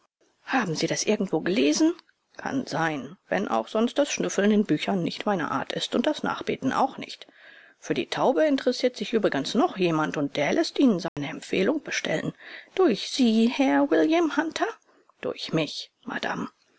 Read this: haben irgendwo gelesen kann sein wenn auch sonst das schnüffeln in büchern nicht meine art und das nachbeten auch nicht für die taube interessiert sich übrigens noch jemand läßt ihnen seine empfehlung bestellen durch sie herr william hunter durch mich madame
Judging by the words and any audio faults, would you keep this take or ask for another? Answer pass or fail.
fail